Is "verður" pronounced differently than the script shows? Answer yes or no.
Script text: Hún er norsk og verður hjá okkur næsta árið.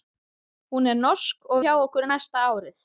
yes